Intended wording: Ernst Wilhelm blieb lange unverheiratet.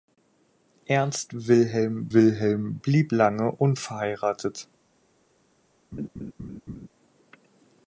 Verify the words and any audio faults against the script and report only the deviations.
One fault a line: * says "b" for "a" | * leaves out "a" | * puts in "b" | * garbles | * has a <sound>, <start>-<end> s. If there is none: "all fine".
* puts in "Wilhelm"
* has a laugh, 5.9-6.9 s